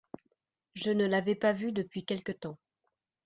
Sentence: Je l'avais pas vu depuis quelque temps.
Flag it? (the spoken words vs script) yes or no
yes